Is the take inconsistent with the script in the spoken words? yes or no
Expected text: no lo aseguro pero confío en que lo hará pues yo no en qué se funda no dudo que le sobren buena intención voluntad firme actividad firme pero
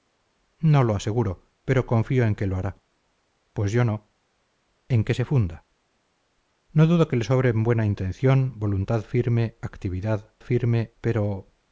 no